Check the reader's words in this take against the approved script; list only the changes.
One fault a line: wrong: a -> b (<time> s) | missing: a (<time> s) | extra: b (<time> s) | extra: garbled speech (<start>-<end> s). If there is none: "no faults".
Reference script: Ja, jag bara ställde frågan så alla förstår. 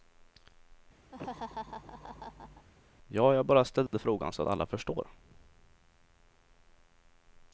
no faults